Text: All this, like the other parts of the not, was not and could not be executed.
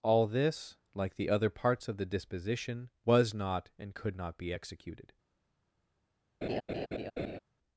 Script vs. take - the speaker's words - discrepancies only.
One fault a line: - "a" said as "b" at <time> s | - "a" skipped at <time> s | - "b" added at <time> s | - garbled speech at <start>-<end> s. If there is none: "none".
- "not" said as "disposition" at 2.1 s